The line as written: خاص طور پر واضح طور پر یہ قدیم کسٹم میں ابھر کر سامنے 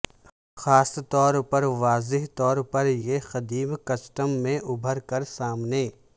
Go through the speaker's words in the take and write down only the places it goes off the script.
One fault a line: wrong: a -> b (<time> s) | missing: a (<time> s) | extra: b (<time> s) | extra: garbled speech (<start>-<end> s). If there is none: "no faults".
no faults